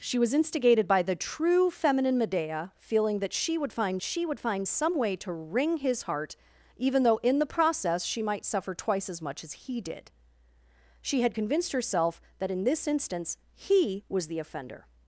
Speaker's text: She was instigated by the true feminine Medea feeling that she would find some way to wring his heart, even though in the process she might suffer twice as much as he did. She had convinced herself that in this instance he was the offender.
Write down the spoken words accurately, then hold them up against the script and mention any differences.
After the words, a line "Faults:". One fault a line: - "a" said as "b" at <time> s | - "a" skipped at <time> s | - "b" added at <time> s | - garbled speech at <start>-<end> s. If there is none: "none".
She was instigated by the true feminine Medea feeling that she would find she would find some way to wring his heart, even though in the process she might suffer twice as much as he did. She had convinced herself that in this instance he was the offender.
Faults:
- "she would find" added at 4.0 s